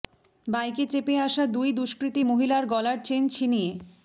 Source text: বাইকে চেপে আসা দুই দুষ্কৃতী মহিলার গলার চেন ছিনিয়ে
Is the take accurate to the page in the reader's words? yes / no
yes